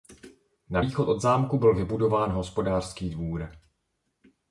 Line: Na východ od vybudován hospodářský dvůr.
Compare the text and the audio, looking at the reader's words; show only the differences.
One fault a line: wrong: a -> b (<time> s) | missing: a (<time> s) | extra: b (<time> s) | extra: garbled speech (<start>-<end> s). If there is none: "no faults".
extra: zámku byl (1.2 s)